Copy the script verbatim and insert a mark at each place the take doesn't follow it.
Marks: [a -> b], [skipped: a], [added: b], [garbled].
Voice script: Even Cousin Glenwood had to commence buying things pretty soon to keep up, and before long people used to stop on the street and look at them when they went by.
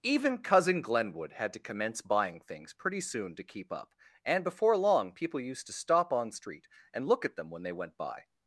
Even Cousin Glenwood had to commence buying things pretty soon to keep up, and before long people used to stop on [skipped: the] street and look at them when they went by.